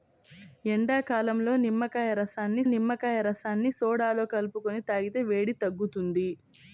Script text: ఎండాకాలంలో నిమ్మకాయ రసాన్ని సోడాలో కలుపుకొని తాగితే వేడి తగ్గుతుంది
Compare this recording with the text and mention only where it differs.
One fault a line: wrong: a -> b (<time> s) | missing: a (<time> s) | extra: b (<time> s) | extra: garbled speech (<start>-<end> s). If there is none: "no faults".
extra: నిమ్మకాయ రసాన్ని (2.7 s)